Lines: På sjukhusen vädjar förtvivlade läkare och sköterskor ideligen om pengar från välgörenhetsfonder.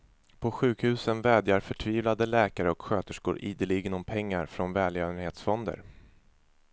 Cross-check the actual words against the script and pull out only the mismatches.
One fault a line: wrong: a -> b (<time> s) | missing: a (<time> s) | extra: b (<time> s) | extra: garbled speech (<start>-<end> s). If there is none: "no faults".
no faults